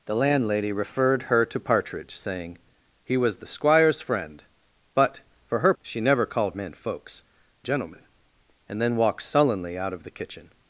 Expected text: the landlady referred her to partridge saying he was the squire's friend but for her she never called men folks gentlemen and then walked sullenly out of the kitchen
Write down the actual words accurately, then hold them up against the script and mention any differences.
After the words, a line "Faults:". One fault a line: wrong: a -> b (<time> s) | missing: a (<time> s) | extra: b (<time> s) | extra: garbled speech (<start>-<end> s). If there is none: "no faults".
the landlady referred her to partridge saying he was the squire's friend but for her she never called men folks gentlemen and then walked sullenly out of the kitchen
Faults:
no faults